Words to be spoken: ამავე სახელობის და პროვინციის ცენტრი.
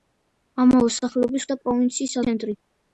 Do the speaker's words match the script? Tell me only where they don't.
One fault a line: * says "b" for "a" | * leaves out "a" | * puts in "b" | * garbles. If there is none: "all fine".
all fine